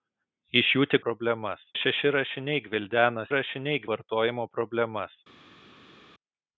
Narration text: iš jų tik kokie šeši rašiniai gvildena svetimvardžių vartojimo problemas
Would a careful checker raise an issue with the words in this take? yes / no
yes